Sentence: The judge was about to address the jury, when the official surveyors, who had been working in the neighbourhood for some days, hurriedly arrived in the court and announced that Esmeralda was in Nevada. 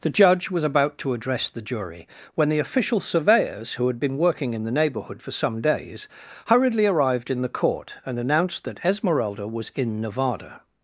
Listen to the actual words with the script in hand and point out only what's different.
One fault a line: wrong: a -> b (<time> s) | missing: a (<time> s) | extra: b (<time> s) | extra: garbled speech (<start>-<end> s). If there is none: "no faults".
no faults